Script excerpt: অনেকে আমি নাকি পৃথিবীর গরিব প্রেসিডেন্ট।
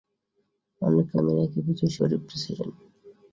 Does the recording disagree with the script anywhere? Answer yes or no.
no